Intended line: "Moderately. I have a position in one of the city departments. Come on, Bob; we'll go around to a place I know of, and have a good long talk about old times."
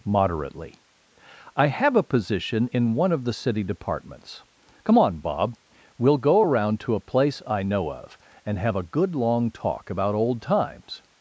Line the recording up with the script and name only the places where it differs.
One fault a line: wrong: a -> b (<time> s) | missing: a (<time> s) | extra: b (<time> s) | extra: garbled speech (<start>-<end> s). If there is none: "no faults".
no faults